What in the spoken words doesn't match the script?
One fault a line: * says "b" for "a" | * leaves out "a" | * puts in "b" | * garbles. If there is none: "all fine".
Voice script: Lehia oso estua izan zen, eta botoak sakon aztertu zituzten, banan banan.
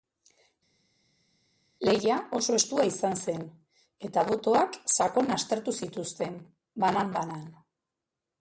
all fine